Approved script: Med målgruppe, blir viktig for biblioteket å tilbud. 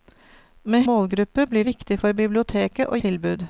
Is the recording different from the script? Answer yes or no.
no